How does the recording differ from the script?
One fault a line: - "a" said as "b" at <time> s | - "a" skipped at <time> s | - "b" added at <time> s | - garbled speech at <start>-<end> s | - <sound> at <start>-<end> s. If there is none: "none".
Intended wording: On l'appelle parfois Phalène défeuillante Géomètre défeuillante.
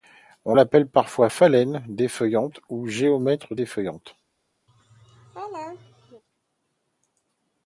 - "ou" added at 2.7 s
- laugh at 4.7-6.2 s